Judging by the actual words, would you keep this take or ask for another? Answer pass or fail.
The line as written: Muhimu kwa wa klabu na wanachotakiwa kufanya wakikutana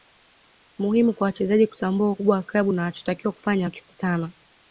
fail